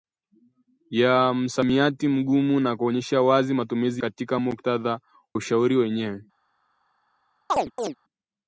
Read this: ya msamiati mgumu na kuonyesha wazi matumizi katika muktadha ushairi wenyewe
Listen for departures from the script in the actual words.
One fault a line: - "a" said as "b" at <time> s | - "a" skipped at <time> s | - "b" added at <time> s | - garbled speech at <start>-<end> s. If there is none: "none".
none